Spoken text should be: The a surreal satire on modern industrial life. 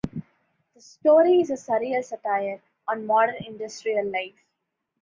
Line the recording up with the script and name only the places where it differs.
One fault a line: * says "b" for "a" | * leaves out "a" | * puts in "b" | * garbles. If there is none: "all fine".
* puts in "story is"